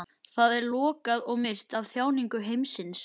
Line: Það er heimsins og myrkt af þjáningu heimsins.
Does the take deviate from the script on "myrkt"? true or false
false